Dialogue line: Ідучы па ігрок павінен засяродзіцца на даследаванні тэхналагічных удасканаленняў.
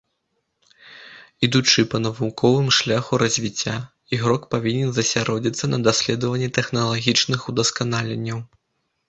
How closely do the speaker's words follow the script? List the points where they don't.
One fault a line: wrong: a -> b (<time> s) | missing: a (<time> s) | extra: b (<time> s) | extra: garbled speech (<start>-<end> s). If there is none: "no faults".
extra: навуковым шляху развіцця (2.0 s)